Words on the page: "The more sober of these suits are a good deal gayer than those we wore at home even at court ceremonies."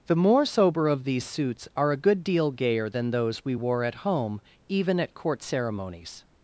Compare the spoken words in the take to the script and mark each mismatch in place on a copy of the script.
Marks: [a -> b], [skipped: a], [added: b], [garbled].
"The more sober of these suits are a good deal gayer than those we wore at home even at court ceremonies."